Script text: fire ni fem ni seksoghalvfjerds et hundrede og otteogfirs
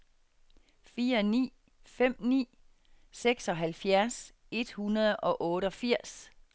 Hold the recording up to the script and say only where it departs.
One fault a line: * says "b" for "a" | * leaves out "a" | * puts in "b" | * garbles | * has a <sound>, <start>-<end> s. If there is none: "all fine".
all fine